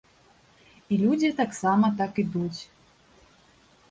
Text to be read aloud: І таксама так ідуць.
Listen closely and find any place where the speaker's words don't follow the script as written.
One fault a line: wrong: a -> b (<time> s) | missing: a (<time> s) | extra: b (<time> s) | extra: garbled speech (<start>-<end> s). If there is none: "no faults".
extra: людзі (1.0 s)